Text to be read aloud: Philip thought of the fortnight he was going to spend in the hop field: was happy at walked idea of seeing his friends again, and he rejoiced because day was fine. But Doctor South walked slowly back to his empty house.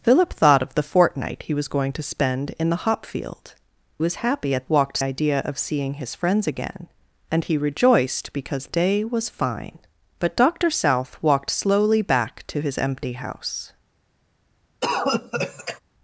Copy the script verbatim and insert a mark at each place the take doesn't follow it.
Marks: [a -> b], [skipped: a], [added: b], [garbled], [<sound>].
Philip thought of the fortnight he was going to spend in the hop field: was happy at walked idea of seeing his friends again, and he rejoiced because day was fine. But Doctor South walked slowly back to his empty house. [cough]